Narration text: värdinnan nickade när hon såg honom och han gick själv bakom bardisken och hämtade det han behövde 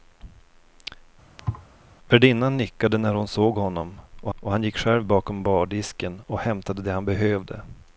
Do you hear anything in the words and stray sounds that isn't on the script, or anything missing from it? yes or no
yes